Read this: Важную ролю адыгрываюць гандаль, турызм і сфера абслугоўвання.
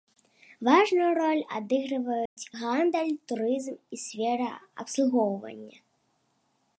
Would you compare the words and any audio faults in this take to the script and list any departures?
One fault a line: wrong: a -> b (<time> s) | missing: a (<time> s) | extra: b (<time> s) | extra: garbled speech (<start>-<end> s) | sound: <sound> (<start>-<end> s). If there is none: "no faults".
sound: dropout (2.3-2.4 s)